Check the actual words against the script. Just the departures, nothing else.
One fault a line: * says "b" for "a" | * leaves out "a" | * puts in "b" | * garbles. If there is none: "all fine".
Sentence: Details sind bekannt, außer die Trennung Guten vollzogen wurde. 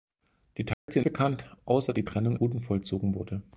all fine